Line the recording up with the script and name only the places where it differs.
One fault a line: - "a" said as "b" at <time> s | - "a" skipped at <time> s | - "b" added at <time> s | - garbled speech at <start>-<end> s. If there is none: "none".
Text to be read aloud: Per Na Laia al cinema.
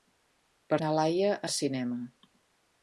none